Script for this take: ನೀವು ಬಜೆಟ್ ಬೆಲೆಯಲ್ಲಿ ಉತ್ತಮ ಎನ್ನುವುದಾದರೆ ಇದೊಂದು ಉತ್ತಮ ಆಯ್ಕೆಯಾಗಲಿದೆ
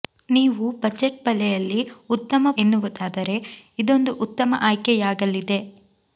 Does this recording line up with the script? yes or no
yes